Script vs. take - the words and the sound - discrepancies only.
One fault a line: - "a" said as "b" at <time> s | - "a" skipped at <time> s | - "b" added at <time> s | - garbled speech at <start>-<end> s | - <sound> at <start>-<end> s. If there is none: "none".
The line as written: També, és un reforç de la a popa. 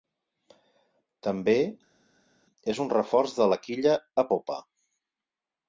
- "quilla" added at 3.7 s